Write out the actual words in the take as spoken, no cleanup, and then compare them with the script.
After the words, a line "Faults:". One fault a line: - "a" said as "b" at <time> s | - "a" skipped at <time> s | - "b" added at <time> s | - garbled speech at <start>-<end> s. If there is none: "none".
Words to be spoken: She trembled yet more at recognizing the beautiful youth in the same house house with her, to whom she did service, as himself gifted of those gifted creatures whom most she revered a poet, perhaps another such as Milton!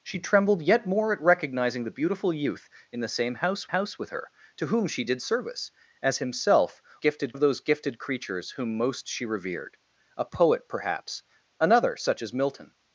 She trembled yet more at recognizing the beautiful youth in the same house house with her, to whom she did service, as himself gifted of those gifted creatures whom most she revered a poet, perhaps another such as Milton!
Faults:
none